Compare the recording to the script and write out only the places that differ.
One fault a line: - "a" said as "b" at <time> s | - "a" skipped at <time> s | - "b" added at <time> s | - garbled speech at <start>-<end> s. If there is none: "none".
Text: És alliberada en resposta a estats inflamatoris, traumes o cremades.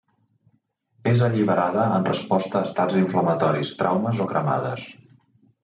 none